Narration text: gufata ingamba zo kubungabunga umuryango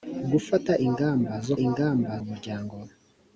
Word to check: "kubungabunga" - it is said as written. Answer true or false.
false